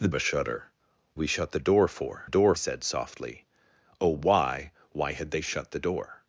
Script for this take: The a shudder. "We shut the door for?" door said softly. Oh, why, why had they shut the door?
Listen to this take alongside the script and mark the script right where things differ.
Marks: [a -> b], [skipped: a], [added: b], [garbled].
The a shudder. "We shut the door for?" door said softly. Oh, why, why had they shut the door?